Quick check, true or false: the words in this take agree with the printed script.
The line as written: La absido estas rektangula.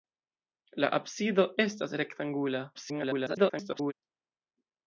false